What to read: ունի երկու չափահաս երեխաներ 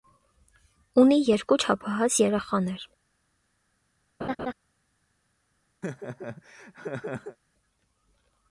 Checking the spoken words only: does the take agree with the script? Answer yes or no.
yes